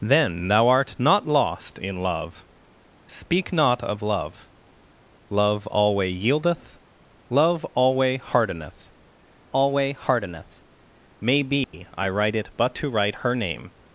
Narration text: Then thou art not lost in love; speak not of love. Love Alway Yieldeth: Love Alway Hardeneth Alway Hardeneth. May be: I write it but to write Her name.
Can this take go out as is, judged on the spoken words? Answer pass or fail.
pass